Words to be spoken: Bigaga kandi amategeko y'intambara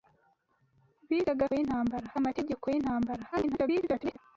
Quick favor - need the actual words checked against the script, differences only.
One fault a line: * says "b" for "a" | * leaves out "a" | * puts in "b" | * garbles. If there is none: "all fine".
* says "y'intambara" for "kandi"
* garbles